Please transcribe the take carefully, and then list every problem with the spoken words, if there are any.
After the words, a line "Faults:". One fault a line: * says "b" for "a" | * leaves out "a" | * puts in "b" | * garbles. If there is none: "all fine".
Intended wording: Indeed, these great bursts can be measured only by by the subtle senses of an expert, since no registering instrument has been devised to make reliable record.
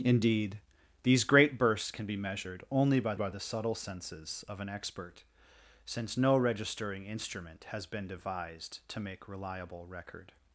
Indeed, these great bursts can be measured only by by the subtle senses of an expert, since no registering instrument has been devised to make reliable record.
Faults:
all fine